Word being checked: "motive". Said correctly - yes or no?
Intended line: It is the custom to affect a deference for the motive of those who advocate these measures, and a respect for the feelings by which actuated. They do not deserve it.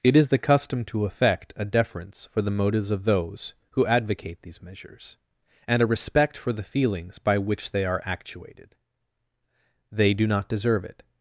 no